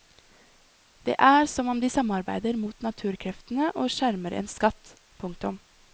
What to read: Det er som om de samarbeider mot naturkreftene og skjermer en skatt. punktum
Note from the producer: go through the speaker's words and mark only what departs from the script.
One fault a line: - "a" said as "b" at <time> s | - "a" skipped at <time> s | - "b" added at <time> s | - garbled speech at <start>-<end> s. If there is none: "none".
none